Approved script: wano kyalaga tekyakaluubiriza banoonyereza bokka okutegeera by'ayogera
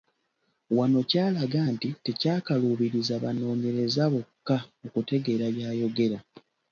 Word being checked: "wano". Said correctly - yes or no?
yes